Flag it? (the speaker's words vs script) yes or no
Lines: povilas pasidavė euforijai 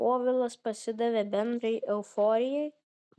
yes